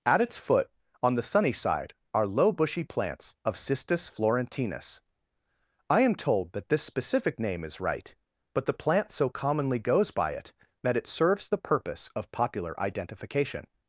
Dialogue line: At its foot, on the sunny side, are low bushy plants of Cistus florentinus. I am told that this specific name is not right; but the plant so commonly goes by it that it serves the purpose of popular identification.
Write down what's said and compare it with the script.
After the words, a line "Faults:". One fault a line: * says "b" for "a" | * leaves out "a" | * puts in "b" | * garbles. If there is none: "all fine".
At its foot, on the sunny side, are low bushy plants of Cistus florentinus. I am told that this specific name is right; but the plant so commonly goes by it that it serves the purpose of popular identification.
Faults:
* leaves out "not"